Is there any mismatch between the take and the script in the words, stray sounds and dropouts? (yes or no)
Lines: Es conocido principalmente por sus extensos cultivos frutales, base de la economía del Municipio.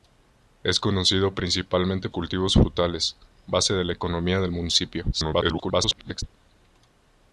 yes